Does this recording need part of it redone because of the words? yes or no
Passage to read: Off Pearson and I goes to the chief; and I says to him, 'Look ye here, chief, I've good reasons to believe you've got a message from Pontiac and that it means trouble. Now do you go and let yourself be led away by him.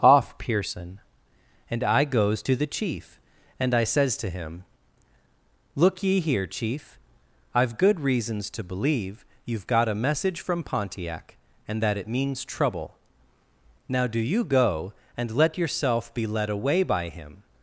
no